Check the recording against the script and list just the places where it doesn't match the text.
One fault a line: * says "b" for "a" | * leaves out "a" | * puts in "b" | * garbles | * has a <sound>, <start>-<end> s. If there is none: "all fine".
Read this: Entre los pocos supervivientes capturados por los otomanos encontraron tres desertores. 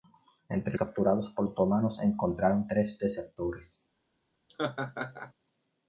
* leaves out "los pocos supervivientes"
* leaves out "los"
* has a laugh, 4.5-5.3 s